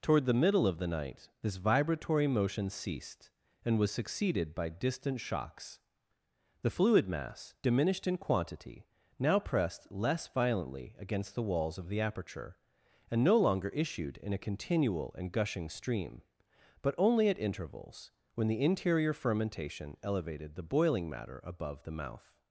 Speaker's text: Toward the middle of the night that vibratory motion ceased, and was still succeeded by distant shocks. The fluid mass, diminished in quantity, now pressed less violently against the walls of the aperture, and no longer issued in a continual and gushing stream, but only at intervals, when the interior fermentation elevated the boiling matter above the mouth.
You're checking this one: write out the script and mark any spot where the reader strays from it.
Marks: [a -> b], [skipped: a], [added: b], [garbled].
Toward the middle of the night [that -> this] vibratory motion ceased, and was [skipped: still] succeeded by distant shocks. The fluid mass, diminished in quantity, now pressed less violently against the walls of the aperture, and no longer issued in a continual and gushing stream, but only at intervals, when the interior fermentation elevated the boiling matter above the mouth.